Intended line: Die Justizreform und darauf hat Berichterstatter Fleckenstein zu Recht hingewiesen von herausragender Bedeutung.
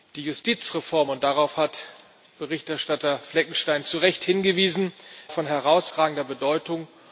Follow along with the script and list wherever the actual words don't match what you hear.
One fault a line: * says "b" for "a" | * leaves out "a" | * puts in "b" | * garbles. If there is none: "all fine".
all fine